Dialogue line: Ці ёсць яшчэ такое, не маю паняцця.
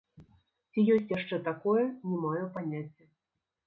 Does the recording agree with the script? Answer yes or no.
yes